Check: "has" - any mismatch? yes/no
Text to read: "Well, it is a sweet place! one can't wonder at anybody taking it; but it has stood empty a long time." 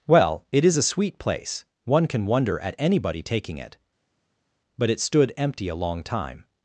yes